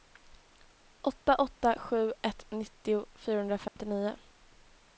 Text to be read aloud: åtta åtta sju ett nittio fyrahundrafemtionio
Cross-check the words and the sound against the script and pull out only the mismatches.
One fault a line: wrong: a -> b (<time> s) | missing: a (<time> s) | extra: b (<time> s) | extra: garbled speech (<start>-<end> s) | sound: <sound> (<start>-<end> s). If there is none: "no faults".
sound: dropout (3.7-3.8 s)